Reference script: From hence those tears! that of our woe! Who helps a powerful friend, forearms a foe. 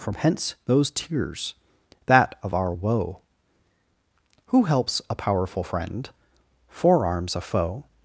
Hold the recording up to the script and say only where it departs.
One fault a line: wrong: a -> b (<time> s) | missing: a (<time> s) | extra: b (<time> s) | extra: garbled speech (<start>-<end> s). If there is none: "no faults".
no faults